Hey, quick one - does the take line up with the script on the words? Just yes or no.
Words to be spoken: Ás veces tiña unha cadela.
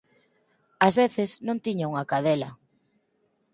no